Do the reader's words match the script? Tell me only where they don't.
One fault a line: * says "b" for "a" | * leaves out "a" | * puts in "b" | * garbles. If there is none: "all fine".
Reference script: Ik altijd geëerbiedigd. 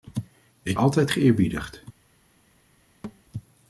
all fine